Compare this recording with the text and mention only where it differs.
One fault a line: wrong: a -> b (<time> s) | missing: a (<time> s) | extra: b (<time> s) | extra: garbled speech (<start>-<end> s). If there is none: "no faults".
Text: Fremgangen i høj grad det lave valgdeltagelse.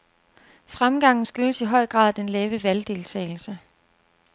extra: skyldes (1.2 s)
wrong: det -> den (2.1 s)